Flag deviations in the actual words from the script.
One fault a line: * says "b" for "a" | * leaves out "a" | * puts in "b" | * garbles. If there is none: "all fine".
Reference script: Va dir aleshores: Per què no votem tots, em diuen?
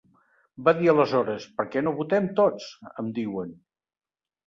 all fine